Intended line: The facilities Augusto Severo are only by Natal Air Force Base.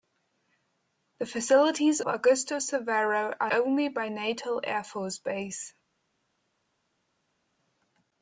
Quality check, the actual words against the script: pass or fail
pass